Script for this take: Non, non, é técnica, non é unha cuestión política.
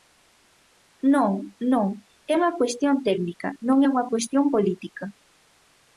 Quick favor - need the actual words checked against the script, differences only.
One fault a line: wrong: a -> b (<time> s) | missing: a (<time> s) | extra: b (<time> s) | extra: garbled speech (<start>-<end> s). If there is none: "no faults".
extra: unha cuestión (2.4 s)